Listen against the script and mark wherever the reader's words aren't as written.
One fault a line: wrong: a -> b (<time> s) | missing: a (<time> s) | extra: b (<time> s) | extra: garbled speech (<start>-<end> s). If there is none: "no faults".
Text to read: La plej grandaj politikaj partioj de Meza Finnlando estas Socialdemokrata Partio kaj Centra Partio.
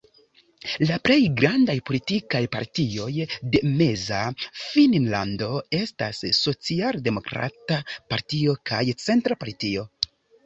no faults